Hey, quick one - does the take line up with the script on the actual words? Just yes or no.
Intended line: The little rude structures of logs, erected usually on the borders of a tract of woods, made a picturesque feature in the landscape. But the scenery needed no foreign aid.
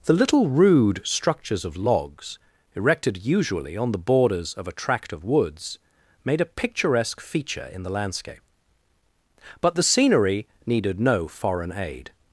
yes